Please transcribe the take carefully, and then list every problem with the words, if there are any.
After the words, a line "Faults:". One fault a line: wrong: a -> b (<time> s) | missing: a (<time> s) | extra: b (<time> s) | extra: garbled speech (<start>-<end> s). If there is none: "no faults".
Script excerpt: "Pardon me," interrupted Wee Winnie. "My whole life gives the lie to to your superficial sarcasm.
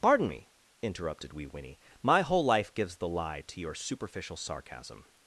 "Pardon me," interrupted Wee Winnie. "My whole life gives the lie to your superficial sarcasm.
Faults:
missing: to (3.6 s)